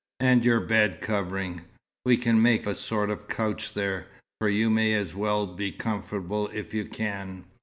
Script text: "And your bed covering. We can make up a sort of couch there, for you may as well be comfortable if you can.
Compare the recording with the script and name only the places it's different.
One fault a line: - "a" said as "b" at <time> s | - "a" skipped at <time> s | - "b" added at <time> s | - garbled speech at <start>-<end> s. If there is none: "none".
- "up" skipped at 2.7 s